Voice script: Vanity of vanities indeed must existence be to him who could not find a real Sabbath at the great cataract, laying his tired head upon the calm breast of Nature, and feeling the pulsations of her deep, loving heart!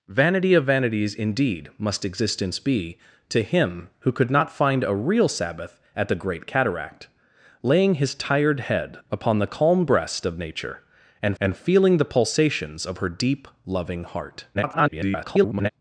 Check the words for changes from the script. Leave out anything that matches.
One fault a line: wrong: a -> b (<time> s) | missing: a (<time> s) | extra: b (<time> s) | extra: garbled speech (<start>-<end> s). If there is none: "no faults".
extra: and (11.4 s)
extra: garbled speech (14.5-15.7 s)